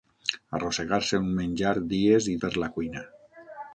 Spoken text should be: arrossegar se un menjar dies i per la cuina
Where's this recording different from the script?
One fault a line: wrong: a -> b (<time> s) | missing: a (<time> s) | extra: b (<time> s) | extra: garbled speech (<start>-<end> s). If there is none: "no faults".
no faults